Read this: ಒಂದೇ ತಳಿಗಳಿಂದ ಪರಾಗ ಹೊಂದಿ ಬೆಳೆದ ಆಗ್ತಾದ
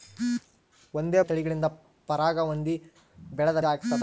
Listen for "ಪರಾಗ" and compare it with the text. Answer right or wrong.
right